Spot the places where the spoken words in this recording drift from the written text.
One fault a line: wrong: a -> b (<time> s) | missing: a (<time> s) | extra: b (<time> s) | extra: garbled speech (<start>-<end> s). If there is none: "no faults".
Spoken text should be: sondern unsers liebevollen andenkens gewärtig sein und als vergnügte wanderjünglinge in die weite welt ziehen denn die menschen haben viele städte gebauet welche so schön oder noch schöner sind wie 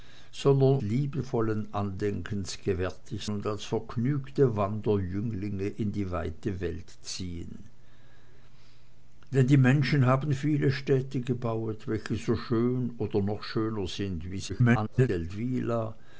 missing: unsers (0.8 s)
missing: sein (3.3 s)
extra: garbled speech (14.5-15.1 s)